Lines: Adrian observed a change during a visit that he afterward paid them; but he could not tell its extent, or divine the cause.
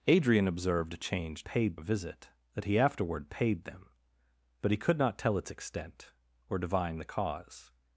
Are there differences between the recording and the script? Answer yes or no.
yes